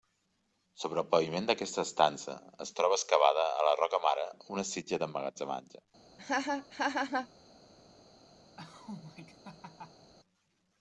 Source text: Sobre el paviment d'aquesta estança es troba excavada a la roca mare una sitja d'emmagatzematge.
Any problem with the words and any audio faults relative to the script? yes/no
yes